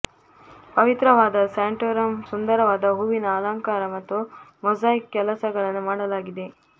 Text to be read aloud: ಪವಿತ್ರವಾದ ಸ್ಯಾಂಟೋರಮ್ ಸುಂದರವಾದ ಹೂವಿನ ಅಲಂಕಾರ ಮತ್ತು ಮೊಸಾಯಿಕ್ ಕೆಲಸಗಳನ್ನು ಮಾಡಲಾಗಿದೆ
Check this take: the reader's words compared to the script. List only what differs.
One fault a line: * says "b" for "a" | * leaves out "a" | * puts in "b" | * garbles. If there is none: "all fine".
all fine